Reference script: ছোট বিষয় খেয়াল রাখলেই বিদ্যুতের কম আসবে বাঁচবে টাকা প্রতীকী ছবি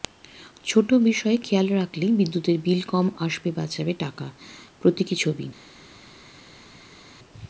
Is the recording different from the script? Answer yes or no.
yes